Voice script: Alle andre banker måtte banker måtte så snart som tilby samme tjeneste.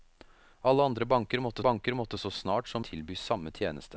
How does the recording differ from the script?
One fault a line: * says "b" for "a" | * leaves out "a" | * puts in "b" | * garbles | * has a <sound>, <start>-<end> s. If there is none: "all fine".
all fine